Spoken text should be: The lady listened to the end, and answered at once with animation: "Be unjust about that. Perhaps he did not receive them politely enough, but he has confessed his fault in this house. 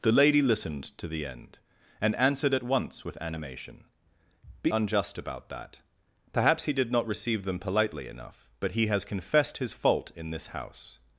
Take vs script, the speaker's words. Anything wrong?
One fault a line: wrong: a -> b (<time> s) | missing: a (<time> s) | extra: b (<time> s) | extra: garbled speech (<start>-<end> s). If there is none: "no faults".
no faults